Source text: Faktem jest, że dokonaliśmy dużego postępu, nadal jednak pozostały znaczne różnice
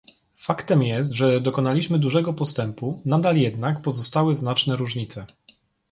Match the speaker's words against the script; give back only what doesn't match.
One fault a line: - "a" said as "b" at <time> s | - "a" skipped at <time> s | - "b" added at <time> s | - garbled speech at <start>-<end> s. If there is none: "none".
none